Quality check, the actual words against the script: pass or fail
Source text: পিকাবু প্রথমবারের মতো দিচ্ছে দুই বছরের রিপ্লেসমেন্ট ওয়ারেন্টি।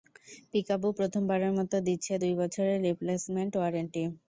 pass